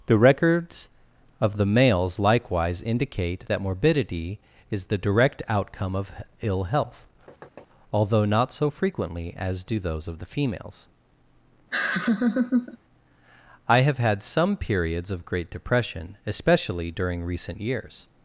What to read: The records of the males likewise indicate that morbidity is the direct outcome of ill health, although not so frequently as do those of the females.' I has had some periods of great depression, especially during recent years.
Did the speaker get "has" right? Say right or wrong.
wrong